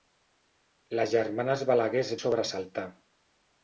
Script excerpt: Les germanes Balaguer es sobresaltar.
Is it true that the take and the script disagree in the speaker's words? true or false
false